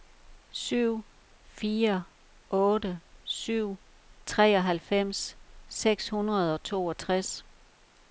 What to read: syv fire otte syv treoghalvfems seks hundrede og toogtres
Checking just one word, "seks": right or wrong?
right